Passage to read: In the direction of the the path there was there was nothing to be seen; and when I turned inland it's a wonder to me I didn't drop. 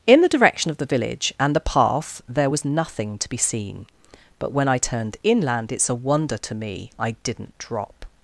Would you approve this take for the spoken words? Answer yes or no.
no